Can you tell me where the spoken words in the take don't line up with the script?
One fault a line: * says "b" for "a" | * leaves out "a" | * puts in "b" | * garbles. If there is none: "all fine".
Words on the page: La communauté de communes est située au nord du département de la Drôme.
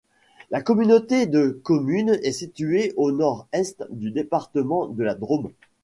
* puts in "est"